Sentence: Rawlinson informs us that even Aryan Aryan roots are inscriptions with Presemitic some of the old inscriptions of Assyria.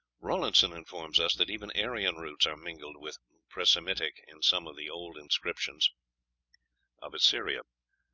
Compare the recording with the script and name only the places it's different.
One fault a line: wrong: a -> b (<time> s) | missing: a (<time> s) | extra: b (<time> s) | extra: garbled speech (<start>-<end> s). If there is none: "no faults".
missing: Aryan (2.1 s)
wrong: inscriptions -> mingled (2.6 s)
extra: in (4.3 s)